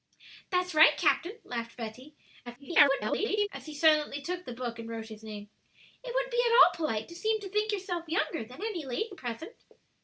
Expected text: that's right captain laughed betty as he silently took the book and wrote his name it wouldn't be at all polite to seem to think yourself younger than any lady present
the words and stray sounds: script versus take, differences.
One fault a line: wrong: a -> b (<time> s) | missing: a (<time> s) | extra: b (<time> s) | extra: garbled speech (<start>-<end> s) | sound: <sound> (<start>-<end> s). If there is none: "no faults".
extra: garbled speech (2.5-3.5 s)